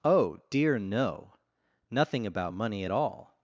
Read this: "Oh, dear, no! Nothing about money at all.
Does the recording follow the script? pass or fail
pass